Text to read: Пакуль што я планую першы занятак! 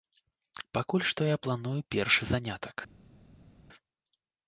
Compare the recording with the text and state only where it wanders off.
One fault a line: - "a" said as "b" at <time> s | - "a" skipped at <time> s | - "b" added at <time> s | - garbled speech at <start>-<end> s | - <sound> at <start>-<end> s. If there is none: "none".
none